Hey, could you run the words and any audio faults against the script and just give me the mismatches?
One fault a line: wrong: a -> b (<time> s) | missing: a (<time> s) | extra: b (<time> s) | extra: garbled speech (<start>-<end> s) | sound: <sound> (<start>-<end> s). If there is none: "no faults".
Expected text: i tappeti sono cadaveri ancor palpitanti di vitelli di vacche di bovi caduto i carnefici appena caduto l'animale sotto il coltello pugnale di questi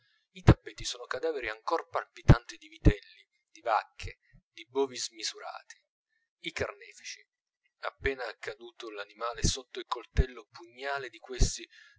wrong: caduto -> smisurati (5.0 s)